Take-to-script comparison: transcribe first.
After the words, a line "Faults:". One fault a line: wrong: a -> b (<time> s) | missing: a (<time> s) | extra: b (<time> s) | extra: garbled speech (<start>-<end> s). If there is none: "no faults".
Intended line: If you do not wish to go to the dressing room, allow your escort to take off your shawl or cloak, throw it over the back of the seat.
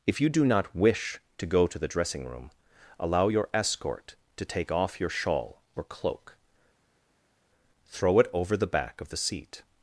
If you do not wish to go to the dressing room, allow your escort to take off your shawl or cloak, throw it over the back of the seat.
Faults:
no faults